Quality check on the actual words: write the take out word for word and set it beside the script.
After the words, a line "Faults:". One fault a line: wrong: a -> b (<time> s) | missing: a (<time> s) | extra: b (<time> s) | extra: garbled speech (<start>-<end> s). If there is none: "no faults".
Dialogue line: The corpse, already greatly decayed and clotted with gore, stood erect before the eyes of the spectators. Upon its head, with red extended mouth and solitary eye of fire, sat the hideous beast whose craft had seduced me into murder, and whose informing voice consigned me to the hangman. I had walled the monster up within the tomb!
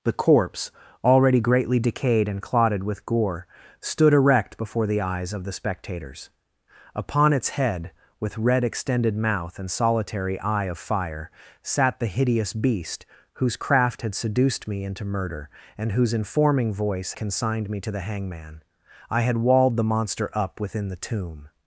The corpse, already greatly decayed and clotted with gore, stood erect before the eyes of the spectators. Upon its head, with red extended mouth and solitary eye of fire, sat the hideous beast whose craft had seduced me into murder, and whose informing voice consigned me to the hangman. I had walled the monster up within the tomb!
Faults:
no faults